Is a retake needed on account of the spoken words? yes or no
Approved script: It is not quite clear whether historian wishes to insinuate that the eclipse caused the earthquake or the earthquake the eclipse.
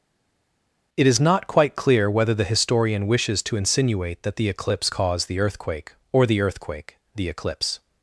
yes